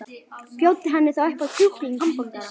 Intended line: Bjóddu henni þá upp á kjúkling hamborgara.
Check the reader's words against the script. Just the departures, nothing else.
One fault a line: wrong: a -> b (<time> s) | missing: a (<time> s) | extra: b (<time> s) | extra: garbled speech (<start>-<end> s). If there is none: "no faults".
no faults